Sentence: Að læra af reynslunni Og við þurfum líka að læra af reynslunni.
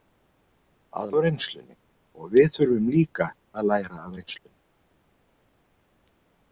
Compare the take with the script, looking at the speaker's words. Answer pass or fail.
fail